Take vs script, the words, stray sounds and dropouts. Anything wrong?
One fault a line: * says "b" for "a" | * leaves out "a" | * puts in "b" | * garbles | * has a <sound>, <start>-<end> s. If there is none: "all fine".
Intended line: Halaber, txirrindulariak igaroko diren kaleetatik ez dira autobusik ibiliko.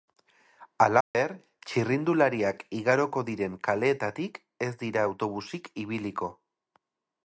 * has a dropout, 1.0-1.1 s